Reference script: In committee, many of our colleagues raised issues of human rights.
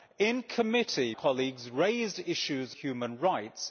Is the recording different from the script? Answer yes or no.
yes